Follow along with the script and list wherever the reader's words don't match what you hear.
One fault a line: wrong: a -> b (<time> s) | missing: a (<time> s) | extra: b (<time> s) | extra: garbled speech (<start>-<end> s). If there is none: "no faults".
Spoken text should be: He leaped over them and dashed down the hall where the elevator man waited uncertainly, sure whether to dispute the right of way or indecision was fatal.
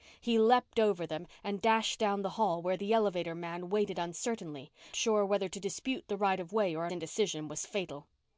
no faults